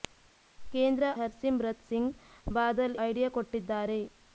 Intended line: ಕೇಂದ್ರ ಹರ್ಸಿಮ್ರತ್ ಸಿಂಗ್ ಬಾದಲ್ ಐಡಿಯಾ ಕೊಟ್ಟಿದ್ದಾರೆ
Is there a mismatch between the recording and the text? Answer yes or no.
no